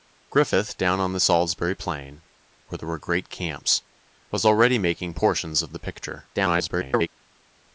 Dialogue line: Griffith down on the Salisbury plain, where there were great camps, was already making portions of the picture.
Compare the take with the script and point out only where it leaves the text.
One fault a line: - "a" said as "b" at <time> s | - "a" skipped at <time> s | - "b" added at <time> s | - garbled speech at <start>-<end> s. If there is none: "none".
- garbled speech at 6.3-7.1 s